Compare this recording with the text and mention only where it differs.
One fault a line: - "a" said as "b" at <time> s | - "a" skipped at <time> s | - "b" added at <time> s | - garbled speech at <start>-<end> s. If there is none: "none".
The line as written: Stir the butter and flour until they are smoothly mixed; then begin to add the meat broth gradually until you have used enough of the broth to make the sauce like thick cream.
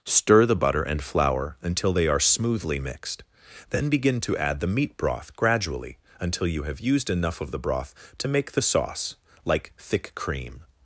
none